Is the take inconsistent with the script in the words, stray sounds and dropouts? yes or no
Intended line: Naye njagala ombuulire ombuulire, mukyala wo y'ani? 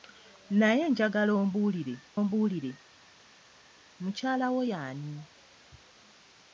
no